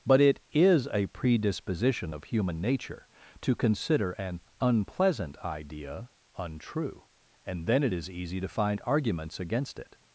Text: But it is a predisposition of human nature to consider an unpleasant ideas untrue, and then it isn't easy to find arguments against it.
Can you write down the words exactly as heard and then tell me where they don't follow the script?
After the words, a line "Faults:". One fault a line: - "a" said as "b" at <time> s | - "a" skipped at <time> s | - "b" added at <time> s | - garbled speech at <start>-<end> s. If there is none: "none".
But it is a predisposition of human nature to consider an unpleasant idea untrue, and then it is easy to find arguments against it.
Faults:
- "ideas" said as "idea" at 5.4 s
- "isn't" said as "is" at 7.9 s